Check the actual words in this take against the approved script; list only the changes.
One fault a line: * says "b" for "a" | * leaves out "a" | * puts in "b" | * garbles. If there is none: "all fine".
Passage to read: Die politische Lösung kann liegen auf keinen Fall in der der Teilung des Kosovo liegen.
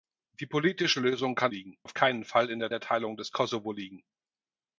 all fine